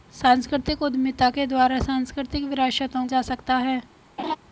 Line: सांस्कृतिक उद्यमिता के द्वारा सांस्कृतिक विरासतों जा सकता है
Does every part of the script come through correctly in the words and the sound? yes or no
no